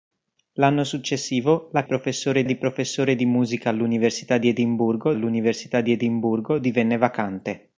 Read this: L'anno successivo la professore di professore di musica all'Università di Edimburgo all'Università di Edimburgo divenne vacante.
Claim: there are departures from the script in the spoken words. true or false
false